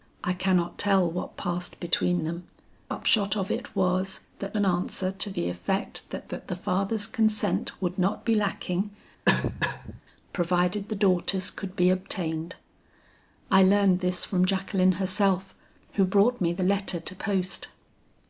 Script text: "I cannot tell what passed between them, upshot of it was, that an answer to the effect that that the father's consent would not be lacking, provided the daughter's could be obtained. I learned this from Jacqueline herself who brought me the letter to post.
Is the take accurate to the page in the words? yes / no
yes